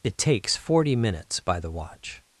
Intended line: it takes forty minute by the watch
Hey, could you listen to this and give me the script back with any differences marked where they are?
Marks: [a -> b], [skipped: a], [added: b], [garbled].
it takes forty [minute -> minutes] by the watch